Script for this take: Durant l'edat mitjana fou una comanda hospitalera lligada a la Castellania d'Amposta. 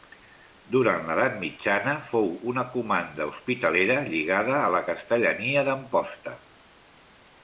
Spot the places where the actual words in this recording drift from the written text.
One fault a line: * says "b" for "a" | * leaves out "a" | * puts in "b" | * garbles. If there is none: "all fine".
all fine